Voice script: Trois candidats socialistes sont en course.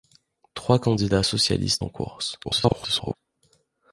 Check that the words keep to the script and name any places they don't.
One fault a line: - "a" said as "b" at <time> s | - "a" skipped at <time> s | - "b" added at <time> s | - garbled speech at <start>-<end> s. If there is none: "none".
- "sont" skipped at 1.8 s
- garbled speech at 2.4-3.2 s